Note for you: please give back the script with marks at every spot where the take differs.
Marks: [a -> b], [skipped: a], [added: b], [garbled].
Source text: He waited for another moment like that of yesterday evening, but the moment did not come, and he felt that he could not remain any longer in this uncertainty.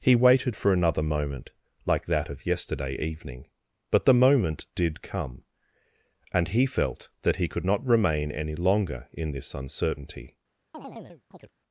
He waited for another moment like that of yesterday evening, but the moment did [skipped: not] come, and he felt that he could not remain any longer in this uncertainty.